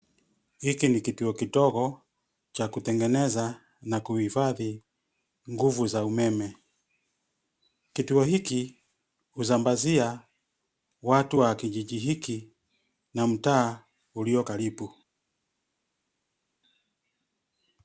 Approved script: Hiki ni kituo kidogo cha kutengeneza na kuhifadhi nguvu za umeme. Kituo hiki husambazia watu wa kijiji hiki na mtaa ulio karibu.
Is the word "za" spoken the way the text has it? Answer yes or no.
yes